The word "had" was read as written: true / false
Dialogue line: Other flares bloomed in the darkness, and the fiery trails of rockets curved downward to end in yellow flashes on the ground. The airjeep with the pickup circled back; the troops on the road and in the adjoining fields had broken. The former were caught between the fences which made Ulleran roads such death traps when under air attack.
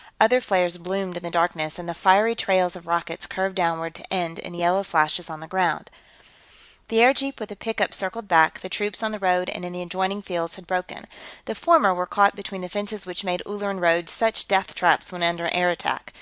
true